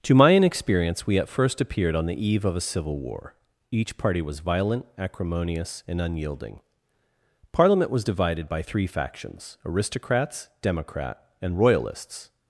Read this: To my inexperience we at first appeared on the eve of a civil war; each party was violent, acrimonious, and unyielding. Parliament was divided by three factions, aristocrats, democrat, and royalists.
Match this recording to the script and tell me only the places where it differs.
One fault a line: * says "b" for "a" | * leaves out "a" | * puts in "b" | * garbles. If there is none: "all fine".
all fine